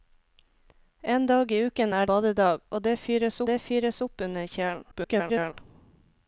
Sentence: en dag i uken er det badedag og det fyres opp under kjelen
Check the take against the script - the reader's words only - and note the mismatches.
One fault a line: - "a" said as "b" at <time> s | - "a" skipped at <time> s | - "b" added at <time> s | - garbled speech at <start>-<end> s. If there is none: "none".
- "det" skipped at 2.1 s
- "det fyres" added at 3.5 s
- garbled speech at 4.9-5.5 s